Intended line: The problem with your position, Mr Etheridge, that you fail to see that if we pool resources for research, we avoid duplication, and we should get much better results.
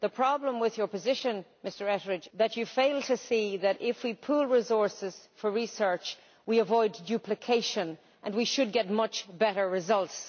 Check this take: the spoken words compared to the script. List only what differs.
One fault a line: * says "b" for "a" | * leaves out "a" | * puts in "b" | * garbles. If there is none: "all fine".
all fine